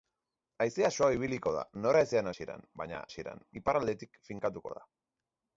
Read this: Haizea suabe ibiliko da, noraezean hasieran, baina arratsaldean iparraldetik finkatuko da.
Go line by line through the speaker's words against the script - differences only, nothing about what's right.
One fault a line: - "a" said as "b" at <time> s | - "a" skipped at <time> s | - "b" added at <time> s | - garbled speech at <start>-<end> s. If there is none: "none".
- "arratsaldean" said as "hasieran" at 3.1 s